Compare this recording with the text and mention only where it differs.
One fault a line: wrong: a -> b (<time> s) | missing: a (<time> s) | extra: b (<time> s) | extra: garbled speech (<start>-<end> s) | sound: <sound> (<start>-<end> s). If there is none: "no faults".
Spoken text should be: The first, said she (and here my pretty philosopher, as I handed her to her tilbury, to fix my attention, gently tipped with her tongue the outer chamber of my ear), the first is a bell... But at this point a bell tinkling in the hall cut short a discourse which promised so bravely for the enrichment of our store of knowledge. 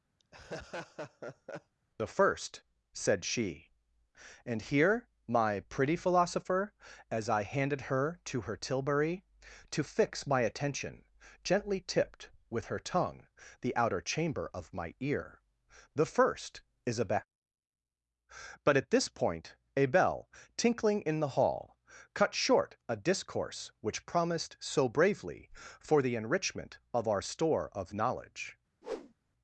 sound: laugh (0.2-1.7 s)
sound: whoosh (28.8-29.1 s)